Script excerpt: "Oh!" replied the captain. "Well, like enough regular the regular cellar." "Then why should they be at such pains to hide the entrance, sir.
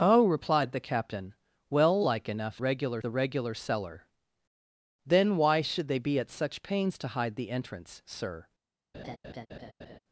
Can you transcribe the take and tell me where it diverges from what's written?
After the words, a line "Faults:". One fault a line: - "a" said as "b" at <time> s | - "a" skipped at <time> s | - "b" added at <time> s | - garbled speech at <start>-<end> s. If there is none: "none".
"Oh!" replied the captain. "Well, like enough regular the regular cellar." "Then why should they be at such pains to hide the entrance, sir.
Faults:
none